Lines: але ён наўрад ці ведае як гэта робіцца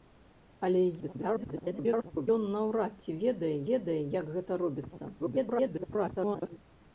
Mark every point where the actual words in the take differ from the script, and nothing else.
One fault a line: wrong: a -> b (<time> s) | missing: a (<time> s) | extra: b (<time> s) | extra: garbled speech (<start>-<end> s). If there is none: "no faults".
extra: garbled speech (1.0-2.3 s)
extra: ведае (3.7 s)
extra: garbled speech (5.2-6.6 s)